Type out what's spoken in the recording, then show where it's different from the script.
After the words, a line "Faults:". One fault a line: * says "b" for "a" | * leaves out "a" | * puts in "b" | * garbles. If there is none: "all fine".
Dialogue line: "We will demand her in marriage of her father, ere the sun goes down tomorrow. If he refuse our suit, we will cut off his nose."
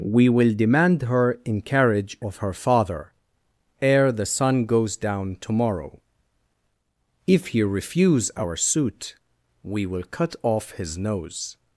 "We will demand her in carriage of her father, ere the sun goes down tomorrow. If he refuse our suit, we will cut off his nose."
Faults:
* says "carriage" for "marriage"